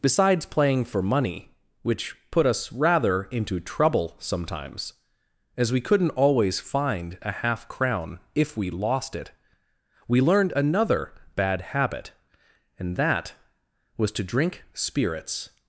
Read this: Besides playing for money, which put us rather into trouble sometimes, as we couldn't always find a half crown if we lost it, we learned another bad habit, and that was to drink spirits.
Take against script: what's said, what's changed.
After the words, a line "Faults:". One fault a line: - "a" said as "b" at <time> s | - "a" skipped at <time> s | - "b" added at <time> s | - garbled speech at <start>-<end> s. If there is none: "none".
Besides playing for money, which put us rather into trouble sometimes, as we couldn't always find a half crown if we lost it, we learned another bad habit, and that was to drink spirits.
Faults:
none